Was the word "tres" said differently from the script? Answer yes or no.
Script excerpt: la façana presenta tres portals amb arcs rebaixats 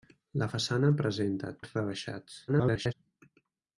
yes